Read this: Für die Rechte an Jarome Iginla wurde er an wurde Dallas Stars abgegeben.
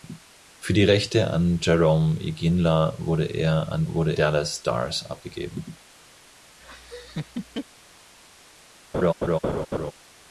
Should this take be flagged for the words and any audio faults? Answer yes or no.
yes